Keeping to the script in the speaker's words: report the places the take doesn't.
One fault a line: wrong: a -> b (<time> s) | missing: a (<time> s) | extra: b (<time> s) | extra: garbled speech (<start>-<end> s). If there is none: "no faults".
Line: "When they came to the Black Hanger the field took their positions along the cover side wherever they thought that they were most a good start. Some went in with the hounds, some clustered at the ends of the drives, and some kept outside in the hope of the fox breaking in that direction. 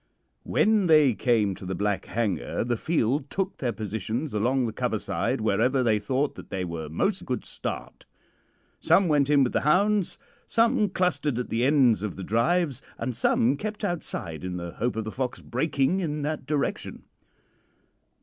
no faults